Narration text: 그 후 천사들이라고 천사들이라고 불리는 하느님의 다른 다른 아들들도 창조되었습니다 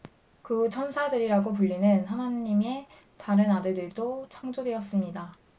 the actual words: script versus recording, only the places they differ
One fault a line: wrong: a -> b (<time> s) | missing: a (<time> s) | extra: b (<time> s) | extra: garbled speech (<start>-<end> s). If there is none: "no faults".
missing: 천사들이라고 (1.5 s)
missing: 다른 (3.5 s)